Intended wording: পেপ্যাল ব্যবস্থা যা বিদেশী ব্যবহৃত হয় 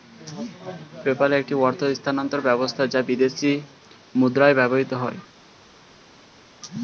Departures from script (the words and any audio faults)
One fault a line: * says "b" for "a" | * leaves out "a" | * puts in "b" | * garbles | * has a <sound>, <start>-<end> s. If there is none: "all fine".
* puts in "একটি অর্থ স্থানান্তর"
* puts in "মুদ্রায়"